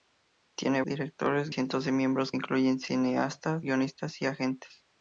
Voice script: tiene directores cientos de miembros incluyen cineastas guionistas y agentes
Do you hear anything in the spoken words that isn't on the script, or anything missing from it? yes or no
no